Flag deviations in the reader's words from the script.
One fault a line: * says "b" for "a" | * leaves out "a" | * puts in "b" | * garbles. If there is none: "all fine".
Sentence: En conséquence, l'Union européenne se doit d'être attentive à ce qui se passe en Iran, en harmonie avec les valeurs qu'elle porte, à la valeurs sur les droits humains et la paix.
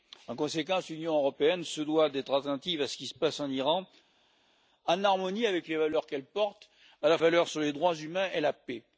all fine